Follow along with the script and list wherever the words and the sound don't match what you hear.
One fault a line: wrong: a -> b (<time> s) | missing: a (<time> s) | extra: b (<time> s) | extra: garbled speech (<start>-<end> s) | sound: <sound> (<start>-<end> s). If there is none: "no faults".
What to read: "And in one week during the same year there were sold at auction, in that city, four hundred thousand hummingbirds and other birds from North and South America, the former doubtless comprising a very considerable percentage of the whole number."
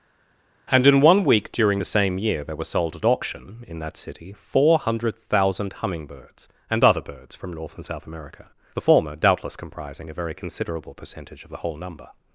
no faults